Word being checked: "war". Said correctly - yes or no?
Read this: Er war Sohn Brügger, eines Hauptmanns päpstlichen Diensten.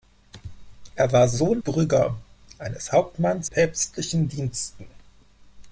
yes